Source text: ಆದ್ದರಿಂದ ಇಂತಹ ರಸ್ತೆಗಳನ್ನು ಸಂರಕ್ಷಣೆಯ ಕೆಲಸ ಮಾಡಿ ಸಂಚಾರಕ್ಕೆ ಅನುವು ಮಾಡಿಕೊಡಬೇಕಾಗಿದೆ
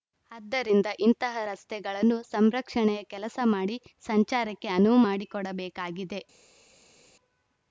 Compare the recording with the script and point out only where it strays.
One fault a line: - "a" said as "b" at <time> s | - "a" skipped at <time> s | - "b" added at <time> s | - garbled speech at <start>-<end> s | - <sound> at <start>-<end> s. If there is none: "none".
none